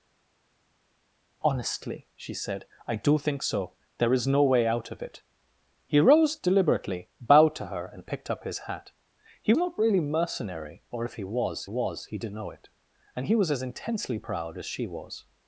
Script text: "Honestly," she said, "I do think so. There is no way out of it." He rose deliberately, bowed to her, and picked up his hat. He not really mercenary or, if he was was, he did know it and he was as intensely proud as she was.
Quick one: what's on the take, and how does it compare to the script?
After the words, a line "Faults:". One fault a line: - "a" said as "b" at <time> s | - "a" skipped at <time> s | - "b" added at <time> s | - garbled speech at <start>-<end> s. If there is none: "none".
"Honestly," she said, "I do think so. There is no way out of it." He rose deliberately, bowed to her, and picked up his hat. He not really mercenary or, if he was was, he did know it and he was as intensely proud as she was.
Faults:
none